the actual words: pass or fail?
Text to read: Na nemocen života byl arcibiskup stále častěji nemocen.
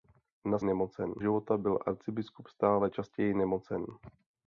pass